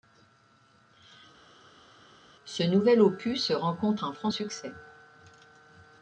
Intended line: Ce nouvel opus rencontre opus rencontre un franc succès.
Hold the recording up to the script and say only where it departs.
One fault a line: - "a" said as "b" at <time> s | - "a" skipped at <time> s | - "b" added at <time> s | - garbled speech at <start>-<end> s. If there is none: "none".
- "opus rencontre" skipped at 4.1 s